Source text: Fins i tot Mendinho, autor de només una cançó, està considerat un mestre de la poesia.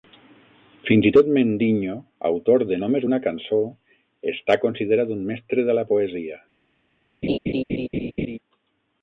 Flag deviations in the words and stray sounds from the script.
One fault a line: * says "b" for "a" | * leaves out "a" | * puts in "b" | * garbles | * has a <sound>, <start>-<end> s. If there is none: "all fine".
* has a laugh, 7.2-8.4 s